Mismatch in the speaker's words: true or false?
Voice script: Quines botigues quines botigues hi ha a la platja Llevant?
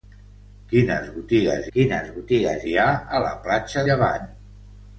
false